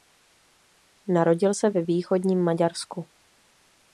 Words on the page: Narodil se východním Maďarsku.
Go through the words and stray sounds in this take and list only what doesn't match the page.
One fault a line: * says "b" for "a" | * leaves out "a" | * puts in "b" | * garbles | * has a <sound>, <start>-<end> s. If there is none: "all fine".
* puts in "ve"